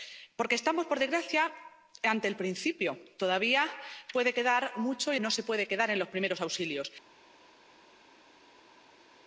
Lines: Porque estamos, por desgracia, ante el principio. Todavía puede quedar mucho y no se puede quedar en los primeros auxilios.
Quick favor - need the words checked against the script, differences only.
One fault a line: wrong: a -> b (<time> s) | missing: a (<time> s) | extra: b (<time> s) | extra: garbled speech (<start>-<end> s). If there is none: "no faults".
no faults